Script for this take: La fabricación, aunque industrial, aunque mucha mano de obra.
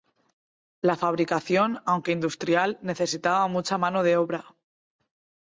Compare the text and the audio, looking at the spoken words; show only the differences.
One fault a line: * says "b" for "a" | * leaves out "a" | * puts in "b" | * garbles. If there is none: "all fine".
* says "necesitaba" for "aunque"